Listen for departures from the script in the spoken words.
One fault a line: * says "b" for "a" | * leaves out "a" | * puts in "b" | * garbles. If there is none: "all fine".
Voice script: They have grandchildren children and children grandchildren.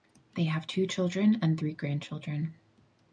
* says "two" for "grandchildren"
* says "three" for "children"